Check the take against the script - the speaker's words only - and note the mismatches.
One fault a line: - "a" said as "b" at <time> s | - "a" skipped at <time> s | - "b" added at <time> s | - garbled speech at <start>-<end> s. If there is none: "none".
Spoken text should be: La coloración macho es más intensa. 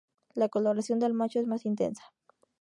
- "del" added at 1.0 s